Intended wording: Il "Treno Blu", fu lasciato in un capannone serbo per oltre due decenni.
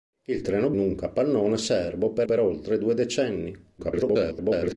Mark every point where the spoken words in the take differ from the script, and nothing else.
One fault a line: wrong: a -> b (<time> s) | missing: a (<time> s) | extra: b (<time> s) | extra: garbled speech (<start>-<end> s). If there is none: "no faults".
missing: Blu fu lasciato (0.7 s)
extra: per (2.2 s)
extra: garbled speech (3.8-4.8 s)